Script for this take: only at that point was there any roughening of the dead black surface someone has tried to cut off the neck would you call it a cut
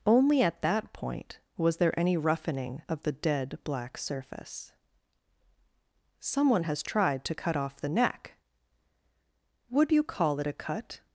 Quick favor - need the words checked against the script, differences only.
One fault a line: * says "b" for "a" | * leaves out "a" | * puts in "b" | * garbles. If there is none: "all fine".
all fine